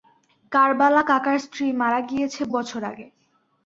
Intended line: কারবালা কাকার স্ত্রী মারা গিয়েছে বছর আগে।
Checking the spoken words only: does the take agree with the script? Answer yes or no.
yes